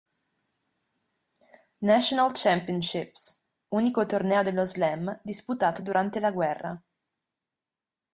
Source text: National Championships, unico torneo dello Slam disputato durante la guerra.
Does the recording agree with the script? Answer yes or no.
yes